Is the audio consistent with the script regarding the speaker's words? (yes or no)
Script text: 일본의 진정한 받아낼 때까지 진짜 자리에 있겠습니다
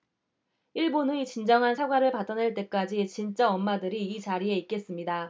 no